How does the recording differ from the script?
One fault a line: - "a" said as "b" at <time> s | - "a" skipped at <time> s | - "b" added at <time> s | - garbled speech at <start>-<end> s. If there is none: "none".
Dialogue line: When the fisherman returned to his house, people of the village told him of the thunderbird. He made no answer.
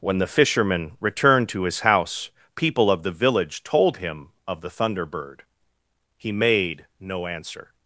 none